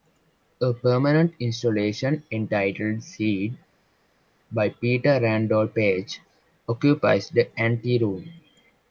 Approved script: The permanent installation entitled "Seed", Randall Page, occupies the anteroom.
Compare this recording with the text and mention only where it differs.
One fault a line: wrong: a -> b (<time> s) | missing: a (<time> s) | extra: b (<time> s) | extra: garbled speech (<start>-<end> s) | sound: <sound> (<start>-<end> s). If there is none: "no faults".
wrong: The -> A (0.6 s)
extra: by Peter (4.5 s)